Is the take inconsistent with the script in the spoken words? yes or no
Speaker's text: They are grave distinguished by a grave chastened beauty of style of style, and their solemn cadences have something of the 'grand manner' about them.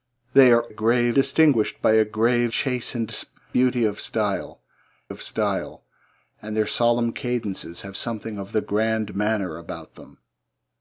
no